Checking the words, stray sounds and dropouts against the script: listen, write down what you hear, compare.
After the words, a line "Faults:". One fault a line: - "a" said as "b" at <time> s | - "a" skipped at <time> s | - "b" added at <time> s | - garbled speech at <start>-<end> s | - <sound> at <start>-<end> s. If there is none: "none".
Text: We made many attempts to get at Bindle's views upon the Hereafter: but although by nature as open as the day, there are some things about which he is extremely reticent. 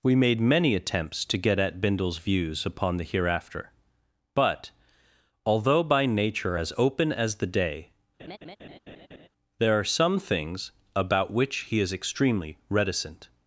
We made many attempts to get at Bindle's views upon the Hereafter: but although by nature as open as the day, there are some things about which he is extremely reticent.
Faults:
- laugh at 8.2-9.3 s